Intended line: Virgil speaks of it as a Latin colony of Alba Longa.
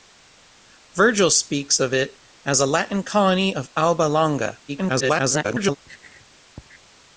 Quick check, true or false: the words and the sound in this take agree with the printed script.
false